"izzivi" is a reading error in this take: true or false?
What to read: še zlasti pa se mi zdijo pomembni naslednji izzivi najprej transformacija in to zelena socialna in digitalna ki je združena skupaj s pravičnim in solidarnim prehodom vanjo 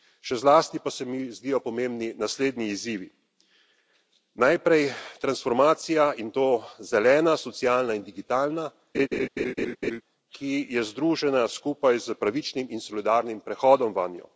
false